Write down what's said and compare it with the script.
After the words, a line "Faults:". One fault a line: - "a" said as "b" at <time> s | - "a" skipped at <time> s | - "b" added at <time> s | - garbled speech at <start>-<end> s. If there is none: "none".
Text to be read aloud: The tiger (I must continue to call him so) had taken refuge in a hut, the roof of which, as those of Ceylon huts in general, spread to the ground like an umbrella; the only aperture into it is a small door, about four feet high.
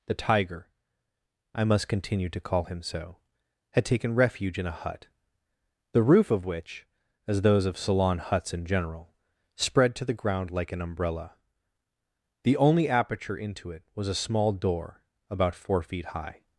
The tiger (I must continue to call him so) had taken refuge in a hut, the roof of which, as those of Ceylon huts in general, spread to the ground like an umbrella; the only aperture into it was a small door, about four feet high.
Faults:
- "is" said as "was" at 13.9 s